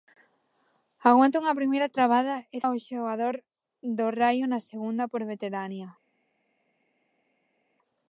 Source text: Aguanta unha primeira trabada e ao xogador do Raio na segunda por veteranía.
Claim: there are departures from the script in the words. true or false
false